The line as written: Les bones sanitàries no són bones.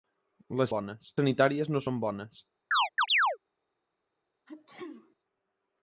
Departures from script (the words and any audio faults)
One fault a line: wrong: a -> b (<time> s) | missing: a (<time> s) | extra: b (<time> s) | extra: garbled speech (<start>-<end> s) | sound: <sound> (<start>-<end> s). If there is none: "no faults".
sound: chirp (2.7-3.4 s)
sound: sneeze (4.5-5.2 s)